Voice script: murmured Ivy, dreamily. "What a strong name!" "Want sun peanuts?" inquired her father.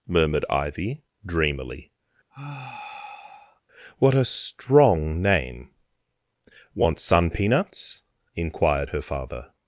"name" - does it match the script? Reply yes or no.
yes